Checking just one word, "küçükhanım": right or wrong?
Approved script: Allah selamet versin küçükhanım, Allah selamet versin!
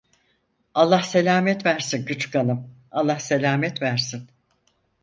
right